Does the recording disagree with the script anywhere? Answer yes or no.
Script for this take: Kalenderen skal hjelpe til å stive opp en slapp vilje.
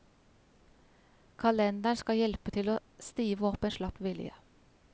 no